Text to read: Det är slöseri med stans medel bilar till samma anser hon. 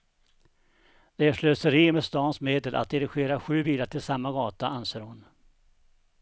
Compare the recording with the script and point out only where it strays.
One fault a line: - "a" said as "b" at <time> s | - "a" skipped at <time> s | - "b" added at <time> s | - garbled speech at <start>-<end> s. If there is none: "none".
- "att dirigera sju" added at 2.8 s
- "gata" added at 4.3 s